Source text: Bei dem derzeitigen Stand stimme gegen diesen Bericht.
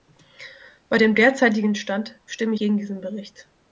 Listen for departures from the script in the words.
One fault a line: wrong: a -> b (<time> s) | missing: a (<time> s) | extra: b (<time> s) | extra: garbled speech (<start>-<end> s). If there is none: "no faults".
no faults